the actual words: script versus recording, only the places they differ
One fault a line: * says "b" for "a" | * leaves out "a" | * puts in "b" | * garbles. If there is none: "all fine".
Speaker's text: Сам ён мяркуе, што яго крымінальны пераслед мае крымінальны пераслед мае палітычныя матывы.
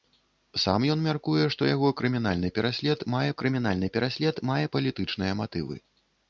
all fine